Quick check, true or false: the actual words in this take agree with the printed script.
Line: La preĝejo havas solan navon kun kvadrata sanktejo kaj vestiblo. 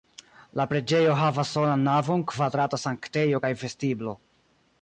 false